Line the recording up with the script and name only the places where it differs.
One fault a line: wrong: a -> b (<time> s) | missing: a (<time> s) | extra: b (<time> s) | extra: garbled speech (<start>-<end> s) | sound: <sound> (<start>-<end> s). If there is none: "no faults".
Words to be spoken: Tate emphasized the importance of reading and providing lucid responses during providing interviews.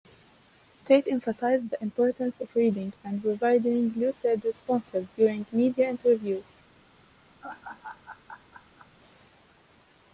wrong: providing -> media (5.5 s)
sound: laugh (7.4-8.9 s)